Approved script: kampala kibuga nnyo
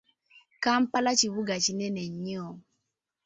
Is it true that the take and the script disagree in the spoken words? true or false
true